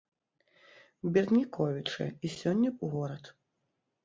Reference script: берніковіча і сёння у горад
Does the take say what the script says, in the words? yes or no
yes